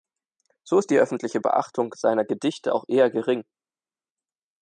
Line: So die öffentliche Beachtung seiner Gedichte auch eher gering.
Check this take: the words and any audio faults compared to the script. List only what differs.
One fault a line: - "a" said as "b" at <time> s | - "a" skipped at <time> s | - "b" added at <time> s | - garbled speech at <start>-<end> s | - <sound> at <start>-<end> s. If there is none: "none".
- "ist" added at 0.8 s